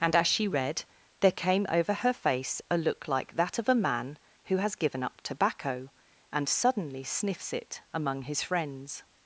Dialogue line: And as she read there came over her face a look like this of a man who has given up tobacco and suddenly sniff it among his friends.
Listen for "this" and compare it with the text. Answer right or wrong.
wrong